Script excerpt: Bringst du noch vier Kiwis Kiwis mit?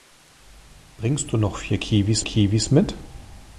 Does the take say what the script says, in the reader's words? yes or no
yes